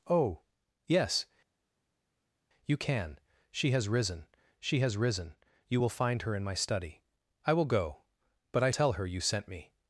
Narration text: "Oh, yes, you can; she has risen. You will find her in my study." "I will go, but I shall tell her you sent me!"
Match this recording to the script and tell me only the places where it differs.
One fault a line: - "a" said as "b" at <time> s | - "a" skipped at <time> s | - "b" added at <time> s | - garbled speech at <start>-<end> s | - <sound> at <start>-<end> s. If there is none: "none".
- "she has risen" added at 4.6 s
- "shall" skipped at 8.7 s